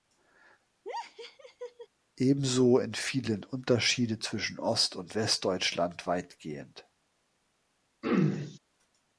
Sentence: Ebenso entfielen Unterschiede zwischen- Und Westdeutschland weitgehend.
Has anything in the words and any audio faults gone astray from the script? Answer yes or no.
yes